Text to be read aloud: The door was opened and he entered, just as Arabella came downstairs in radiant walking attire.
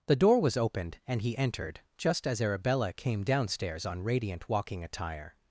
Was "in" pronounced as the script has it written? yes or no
no